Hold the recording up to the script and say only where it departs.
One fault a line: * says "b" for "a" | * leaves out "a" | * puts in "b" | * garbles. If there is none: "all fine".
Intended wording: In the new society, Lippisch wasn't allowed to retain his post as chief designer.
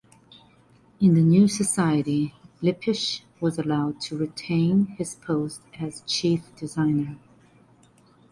* says "was" for "wasn't"